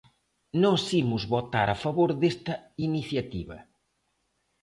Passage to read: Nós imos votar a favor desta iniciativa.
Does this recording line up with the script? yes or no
yes